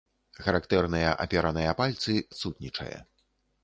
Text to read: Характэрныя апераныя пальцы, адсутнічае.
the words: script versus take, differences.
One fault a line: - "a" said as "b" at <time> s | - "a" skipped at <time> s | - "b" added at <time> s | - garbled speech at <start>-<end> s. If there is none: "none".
none